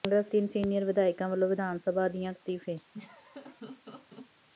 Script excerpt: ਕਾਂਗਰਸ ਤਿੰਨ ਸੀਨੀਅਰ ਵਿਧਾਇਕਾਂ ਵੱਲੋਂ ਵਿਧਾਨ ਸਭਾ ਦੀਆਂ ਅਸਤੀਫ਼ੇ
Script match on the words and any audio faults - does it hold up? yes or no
no